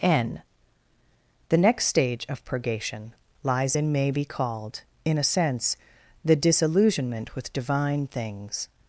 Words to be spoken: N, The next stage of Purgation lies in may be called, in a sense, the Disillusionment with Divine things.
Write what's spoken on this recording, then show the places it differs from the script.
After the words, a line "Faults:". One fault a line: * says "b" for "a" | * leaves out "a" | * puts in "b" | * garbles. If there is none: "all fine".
N, The next stage of Purgation lies in may be called, in a sense, the Disillusionment with Divine things.
Faults:
all fine